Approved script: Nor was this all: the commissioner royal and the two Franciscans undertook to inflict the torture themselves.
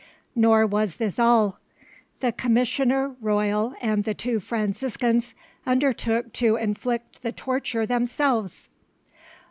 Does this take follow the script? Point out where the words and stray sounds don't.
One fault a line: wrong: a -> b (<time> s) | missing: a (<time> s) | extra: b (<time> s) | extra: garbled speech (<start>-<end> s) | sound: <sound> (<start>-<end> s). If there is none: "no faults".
no faults